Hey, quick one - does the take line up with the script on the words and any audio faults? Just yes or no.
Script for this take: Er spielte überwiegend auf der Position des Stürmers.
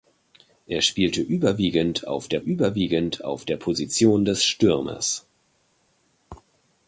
no